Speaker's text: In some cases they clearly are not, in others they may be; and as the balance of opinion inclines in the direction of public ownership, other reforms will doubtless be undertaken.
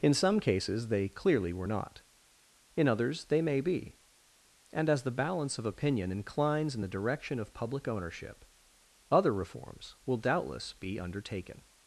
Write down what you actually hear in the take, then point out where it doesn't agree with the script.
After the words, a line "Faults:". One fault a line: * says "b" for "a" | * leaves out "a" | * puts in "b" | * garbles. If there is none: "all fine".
In some cases they clearly were not, in others they may be; and as the balance of opinion inclines in the direction of public ownership, other reforms will doubtless be undertaken.
Faults:
* says "were" for "are"